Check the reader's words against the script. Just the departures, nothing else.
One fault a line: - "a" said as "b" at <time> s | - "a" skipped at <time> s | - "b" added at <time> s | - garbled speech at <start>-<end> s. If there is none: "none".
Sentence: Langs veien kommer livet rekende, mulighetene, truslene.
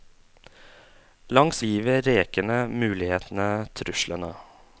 - "veien kommer" skipped at 1.6 s